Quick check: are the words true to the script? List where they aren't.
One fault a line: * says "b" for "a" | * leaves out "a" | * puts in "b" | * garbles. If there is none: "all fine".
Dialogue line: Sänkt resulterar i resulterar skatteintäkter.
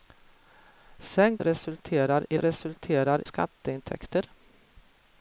all fine